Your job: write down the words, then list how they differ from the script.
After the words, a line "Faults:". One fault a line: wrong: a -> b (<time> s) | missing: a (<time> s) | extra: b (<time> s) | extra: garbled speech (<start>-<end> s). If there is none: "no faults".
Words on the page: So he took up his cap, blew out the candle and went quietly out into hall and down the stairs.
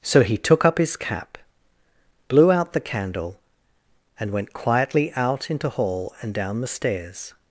So he took up his cap, blew out the candle and went quietly out into hall and down the stairs.
Faults:
no faults